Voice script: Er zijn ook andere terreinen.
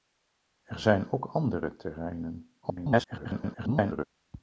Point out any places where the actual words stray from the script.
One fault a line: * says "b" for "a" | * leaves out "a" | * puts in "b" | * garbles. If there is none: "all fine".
* garbles